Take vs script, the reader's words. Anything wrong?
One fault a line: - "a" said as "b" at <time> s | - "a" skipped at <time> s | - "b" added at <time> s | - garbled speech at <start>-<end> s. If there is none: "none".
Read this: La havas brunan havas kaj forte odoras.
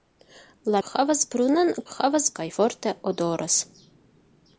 none